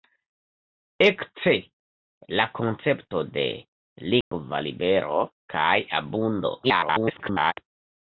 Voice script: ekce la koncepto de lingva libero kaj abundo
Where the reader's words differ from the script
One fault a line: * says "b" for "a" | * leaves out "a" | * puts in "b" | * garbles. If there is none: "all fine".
* garbles